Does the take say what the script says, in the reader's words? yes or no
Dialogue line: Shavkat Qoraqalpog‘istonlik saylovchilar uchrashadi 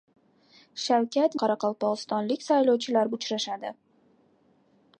yes